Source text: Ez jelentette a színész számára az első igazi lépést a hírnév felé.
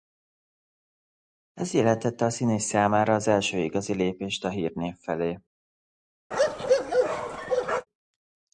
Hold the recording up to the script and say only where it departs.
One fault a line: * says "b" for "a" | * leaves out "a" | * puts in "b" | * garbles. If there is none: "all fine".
all fine